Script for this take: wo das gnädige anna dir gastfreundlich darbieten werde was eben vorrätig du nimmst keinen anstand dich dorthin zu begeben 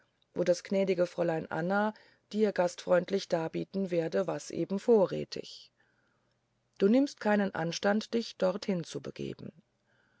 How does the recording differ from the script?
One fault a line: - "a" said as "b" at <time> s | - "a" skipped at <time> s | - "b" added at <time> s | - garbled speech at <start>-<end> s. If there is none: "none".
- "fräulein" added at 1.1 s